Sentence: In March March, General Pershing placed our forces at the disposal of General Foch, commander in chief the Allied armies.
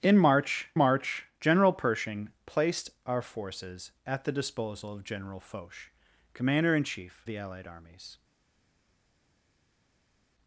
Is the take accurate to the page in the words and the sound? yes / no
yes